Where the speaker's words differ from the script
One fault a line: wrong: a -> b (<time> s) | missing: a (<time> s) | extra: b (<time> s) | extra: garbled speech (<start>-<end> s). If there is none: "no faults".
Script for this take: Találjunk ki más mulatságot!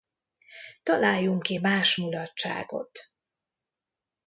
no faults